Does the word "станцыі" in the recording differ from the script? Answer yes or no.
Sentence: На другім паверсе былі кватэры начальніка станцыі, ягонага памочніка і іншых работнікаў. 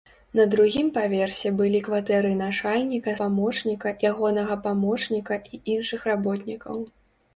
yes